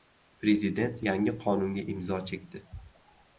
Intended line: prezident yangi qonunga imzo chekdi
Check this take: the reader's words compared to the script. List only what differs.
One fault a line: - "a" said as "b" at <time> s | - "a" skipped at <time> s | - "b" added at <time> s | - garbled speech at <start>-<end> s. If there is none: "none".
none